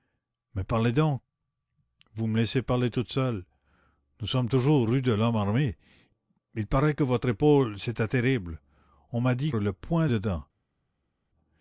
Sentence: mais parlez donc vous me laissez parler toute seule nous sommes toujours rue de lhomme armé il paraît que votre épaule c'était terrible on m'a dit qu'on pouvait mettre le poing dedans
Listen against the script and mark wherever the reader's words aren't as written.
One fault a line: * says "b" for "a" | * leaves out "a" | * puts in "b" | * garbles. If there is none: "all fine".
* leaves out "qu'on pouvait mettre"